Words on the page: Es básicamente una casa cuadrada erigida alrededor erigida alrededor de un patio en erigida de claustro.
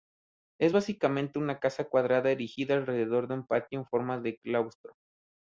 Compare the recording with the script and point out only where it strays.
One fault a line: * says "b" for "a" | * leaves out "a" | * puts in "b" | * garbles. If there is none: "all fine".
* leaves out "erigida alrededor"
* says "forma" for "erigida"